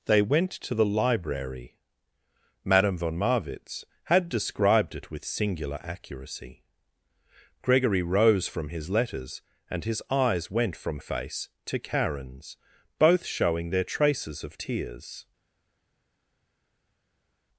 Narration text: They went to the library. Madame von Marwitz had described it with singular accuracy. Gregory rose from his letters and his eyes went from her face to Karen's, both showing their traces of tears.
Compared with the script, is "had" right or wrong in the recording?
right